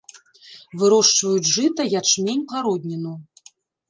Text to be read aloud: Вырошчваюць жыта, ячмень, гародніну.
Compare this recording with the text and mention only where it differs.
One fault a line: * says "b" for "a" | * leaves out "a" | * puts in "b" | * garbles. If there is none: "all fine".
all fine